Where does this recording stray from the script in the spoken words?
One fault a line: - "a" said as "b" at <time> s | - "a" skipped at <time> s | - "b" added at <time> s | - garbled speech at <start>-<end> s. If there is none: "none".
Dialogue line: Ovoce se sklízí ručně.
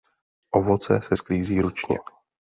none